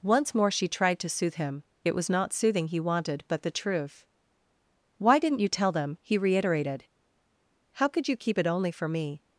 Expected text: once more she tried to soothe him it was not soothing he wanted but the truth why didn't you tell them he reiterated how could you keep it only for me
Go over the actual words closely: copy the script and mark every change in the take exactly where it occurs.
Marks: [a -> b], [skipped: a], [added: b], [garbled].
once more she tried to soothe him it was not soothing he wanted but the truth why didn't you tell them he reiterated how could you keep it only for me